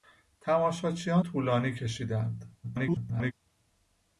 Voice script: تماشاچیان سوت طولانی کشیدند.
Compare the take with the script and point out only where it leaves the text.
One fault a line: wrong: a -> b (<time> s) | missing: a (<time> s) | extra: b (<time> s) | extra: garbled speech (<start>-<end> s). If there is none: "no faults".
missing: سوت (1.2 s)
extra: garbled speech (2.6-3.3 s)